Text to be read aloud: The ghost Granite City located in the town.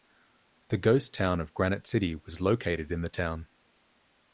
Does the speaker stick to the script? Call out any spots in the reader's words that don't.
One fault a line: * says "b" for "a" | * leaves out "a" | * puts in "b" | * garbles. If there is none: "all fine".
* puts in "town of"
* puts in "was"